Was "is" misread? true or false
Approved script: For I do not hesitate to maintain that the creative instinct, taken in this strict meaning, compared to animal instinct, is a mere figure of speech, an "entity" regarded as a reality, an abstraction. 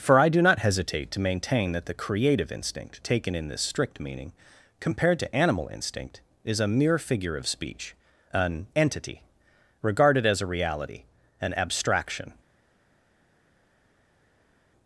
false